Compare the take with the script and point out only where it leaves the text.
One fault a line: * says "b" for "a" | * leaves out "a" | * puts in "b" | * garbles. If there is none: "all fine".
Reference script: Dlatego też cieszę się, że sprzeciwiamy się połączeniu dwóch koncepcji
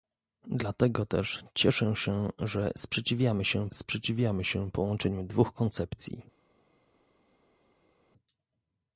* puts in "sprzeciwiamy się"